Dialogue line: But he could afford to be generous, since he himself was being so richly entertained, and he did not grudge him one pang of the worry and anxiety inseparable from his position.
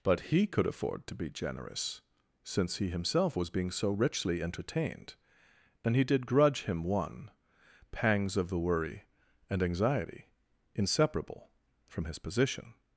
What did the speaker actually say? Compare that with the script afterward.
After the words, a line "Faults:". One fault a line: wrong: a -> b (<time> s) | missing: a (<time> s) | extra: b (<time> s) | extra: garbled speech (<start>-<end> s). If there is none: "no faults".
But he could afford to be generous, since he himself was being so richly entertained, and he did grudge him one pangs of the worry and anxiety inseparable from his position.
Faults:
missing: not (6.3 s)
wrong: pang -> pangs (7.9 s)